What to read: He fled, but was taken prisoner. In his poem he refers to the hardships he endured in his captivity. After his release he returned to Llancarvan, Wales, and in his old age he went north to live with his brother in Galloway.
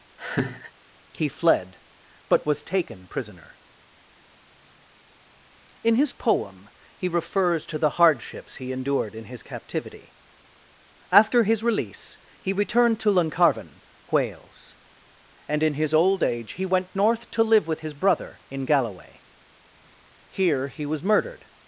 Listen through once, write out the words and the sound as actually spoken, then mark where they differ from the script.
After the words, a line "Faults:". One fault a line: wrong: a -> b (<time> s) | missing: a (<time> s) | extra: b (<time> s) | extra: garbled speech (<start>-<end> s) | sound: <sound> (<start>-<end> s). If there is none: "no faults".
He fled, but was taken prisoner. In his poem he refers to the hardships he endured in his captivity. After his release he returned to Llancarvan, Wales, and in his old age he went north to live with his brother in Galloway. Here he was murdered
Faults:
sound: laugh (0.2-0.7 s)
extra: Here he was murdered (20.3 s)